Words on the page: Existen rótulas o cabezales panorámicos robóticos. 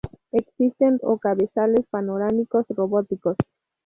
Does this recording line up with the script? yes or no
no